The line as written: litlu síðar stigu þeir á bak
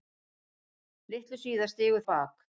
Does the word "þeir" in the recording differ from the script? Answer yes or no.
yes